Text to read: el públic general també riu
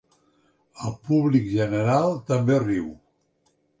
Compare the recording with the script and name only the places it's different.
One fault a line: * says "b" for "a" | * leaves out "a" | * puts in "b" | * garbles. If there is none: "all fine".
all fine